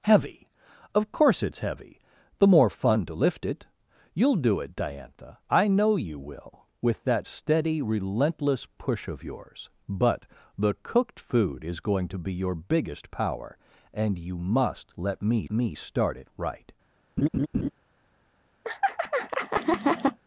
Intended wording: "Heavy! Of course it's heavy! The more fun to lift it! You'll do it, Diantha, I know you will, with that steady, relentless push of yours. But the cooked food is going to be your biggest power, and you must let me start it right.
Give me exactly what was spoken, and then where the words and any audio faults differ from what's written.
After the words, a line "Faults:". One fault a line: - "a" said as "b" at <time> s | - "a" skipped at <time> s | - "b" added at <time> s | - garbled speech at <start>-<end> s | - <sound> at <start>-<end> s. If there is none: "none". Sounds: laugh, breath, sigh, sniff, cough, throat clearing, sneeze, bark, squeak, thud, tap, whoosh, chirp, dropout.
"Heavy! Of course it's heavy! The more fun to lift it! You'll do it, Diantha, I know you will, with that steady, relentless push of yours. But the cooked food is going to be your biggest power, and you must let me me start it right.
Faults:
- "me" added at 15.5 s
- laugh at 17.2-17.7 s
- laugh at 18.6-20.2 s